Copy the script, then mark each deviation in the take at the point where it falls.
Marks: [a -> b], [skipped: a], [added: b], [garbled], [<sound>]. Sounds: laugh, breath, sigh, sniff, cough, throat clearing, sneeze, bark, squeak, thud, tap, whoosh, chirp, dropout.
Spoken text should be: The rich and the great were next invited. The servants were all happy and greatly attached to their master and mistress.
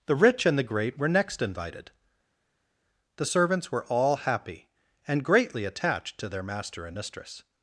The rich and the great were next invited. The servants were all happy and greatly attached to their master and mistress.